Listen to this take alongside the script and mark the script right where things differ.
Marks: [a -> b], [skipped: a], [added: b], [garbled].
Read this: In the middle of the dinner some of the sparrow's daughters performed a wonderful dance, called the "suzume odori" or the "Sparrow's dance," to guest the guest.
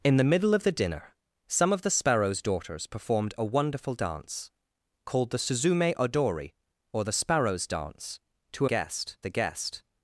In the middle of the dinner some of the sparrow's daughters performed a wonderful dance, called the "suzume odori" or the "Sparrow's dance," to guest the guest.